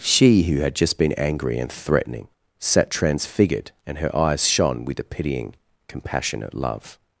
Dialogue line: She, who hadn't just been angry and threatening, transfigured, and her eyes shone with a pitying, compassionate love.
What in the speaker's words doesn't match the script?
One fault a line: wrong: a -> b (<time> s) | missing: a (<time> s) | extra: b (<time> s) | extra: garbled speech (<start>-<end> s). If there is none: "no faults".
wrong: hadn't -> had (0.6 s)
extra: sat (2.6 s)